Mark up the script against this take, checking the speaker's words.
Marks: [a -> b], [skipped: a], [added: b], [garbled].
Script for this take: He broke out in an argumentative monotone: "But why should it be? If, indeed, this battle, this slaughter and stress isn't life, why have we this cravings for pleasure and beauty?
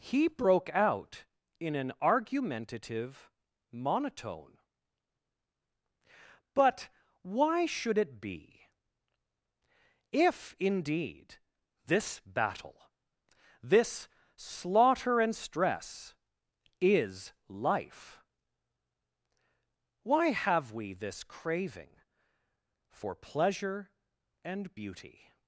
He broke out in an argumentative monotone: "But why should it be? If, indeed, this battle, this slaughter and stress [isn't -> is] life, why have we this [cravings -> craving] for pleasure and beauty?